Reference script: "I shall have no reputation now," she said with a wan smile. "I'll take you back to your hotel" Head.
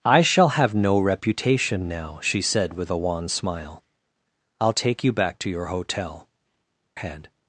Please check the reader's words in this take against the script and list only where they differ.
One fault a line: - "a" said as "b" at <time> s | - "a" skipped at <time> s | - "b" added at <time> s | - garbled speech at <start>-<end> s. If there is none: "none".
none